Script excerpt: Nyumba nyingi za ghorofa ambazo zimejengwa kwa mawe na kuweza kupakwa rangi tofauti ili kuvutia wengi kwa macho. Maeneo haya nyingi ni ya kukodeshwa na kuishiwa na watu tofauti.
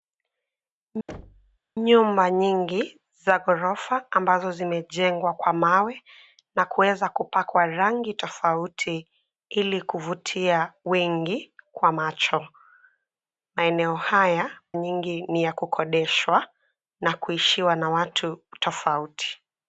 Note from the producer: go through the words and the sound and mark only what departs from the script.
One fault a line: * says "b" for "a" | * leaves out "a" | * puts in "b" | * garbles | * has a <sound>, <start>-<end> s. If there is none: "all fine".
* has a thud, 1.1-1.6 s